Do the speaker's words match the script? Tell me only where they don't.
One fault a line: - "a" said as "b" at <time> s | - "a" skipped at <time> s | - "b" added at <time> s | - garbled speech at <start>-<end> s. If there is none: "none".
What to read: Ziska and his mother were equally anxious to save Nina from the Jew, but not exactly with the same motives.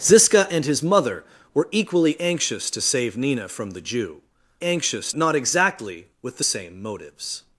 - "but" said as "anxious" at 4.6 s